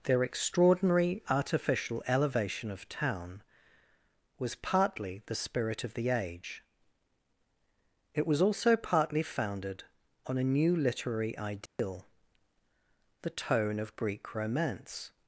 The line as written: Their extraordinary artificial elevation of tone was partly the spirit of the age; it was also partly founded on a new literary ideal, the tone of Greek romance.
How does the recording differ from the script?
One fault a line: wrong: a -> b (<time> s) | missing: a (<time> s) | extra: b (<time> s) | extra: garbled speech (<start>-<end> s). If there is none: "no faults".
wrong: tone -> town (2.9 s)